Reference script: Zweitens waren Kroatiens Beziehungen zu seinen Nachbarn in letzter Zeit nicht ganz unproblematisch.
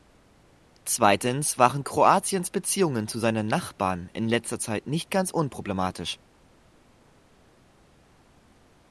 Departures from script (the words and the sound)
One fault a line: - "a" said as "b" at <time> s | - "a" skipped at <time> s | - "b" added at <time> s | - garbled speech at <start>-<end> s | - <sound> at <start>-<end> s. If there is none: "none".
none